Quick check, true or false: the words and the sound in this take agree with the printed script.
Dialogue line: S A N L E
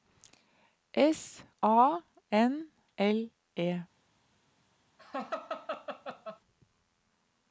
false